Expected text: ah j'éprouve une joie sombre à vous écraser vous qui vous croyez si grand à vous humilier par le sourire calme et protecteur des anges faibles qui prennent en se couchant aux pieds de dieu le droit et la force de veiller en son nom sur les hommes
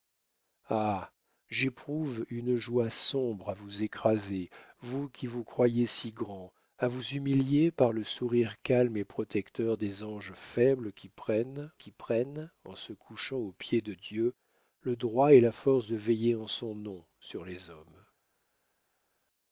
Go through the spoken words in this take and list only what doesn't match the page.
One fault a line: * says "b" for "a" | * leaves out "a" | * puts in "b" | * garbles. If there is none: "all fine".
* puts in "qui prennent"